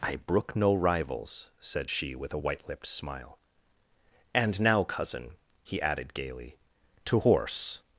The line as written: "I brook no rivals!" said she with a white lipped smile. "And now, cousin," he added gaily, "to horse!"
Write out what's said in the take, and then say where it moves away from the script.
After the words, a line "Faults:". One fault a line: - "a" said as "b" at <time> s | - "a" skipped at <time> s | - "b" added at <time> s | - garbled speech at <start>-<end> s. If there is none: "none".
"I brook no rivals!" said she with a white lipped smile. "And now, cousin," he added gaily, "to horse!"
Faults:
none